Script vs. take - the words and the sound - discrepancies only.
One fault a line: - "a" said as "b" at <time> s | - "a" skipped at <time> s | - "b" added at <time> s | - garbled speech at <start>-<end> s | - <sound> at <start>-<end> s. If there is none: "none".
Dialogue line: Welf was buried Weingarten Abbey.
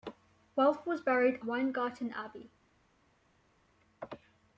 none